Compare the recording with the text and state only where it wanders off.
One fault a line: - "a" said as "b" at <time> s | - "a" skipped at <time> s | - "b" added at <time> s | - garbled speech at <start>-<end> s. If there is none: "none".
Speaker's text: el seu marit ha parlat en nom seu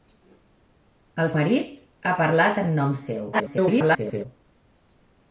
- "seu" skipped at 1.3 s
- garbled speech at 3.3-4.3 s